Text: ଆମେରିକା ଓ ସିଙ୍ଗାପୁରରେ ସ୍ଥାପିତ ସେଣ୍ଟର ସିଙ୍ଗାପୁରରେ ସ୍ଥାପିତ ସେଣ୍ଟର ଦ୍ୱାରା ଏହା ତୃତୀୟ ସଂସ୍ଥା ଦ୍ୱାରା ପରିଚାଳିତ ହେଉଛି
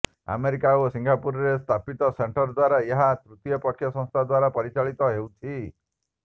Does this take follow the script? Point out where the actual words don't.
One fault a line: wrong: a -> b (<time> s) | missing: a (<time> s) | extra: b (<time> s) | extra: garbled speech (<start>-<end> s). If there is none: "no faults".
missing: ସିଙ୍ଗାପୁରରେ ସ୍ଥାପିତ ସେଣ୍ଟର (2.5 s)
extra: ପକ୍ଷ (3.7 s)